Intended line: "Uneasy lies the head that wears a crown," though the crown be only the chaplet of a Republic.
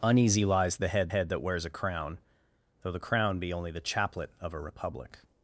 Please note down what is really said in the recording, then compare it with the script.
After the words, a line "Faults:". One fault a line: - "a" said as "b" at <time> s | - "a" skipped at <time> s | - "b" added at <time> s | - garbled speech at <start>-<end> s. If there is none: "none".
"Uneasy lies the head head that wears a crown," though the crown be only the chaplet of a Republic.
Faults:
- "head" added at 1.1 s